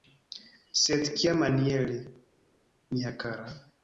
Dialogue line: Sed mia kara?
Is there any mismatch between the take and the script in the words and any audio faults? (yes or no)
yes